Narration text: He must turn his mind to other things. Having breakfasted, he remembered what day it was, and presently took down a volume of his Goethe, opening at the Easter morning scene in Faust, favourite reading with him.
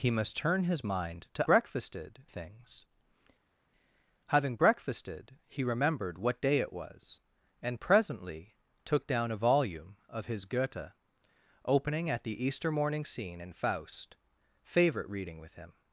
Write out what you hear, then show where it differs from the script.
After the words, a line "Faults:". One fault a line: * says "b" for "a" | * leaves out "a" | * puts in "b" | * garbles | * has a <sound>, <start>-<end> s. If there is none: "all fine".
He must turn his mind to breakfasted things. Having breakfasted, he remembered what day it was, and presently took down a volume of his Goethe, opening at the Easter morning scene in Faust, favourite reading with him.
Faults:
* says "breakfasted" for "other"